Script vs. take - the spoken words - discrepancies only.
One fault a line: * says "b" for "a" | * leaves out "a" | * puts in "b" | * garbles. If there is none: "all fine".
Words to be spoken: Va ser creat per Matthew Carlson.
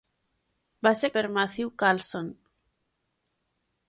* leaves out "creat"